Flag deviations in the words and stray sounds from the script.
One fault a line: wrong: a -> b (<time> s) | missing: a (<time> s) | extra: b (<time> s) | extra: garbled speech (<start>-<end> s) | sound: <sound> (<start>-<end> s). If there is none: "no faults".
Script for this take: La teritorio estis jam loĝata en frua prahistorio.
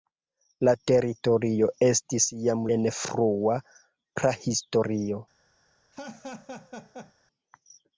missing: loĝata (2.6 s)
sound: laugh (5.9-7.1 s)